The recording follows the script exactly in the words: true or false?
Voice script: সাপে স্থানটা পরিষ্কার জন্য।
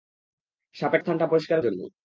true